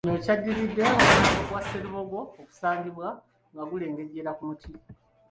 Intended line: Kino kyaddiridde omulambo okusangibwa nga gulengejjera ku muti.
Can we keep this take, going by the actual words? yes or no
no